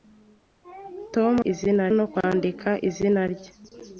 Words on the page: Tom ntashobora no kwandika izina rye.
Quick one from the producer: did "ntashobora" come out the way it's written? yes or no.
no